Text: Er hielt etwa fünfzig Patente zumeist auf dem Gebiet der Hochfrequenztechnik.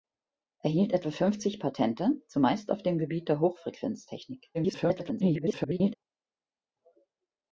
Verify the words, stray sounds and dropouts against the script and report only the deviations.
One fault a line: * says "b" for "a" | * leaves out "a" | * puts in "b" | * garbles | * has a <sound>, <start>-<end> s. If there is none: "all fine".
* garbles